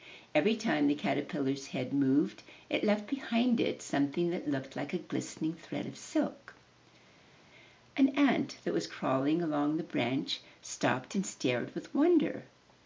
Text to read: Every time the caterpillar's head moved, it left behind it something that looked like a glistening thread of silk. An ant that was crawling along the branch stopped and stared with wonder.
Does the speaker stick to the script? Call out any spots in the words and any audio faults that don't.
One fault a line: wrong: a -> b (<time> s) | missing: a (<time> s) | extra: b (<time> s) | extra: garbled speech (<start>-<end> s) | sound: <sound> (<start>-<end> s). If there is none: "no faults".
no faults